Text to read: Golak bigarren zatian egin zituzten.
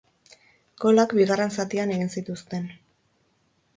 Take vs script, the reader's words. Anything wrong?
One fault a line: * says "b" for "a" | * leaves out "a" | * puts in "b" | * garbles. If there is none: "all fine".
all fine